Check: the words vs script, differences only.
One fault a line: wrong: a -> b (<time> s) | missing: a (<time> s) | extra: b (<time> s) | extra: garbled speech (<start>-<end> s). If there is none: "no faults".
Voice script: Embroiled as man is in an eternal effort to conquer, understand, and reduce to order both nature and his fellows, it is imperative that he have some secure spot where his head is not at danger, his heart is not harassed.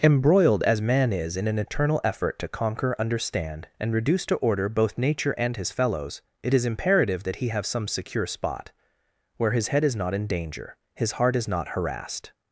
wrong: at -> in (10.1 s)